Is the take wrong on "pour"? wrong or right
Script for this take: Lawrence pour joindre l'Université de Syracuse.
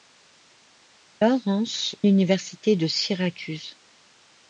wrong